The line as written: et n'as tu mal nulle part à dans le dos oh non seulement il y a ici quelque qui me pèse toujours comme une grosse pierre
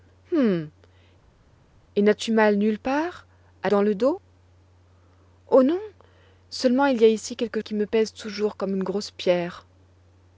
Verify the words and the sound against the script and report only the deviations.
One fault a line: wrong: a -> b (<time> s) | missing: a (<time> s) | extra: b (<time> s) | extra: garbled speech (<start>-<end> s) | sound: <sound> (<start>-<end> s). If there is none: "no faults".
no faults